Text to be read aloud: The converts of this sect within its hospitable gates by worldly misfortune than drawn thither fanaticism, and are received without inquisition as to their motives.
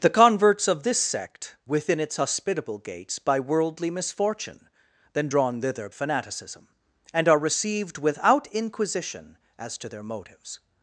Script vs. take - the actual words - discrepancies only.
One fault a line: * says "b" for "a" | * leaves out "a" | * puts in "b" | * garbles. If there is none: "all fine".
all fine